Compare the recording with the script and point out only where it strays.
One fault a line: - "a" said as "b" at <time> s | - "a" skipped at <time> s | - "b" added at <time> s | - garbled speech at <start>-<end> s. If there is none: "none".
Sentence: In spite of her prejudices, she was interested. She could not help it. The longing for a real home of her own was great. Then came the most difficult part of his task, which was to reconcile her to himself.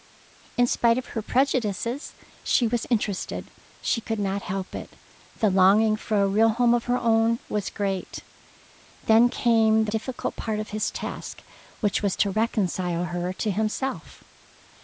- "most" skipped at 9.9 s